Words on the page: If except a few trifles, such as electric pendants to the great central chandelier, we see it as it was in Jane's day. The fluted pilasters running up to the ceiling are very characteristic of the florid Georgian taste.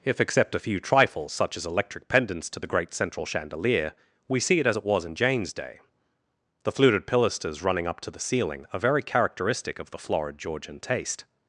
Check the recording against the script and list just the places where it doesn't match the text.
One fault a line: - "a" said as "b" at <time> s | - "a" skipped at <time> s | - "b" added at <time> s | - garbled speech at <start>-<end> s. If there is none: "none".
none